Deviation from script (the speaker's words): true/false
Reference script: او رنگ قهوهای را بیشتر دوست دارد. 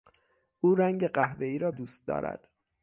true